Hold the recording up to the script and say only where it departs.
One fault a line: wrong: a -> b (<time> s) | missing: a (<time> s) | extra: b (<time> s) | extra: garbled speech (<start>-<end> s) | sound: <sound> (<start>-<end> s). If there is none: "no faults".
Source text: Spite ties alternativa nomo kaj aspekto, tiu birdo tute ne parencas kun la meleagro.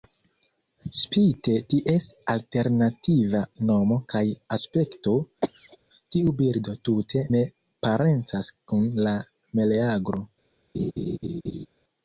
sound: cough (5.4-5.8 s)
sound: laugh (10.7-11.7 s)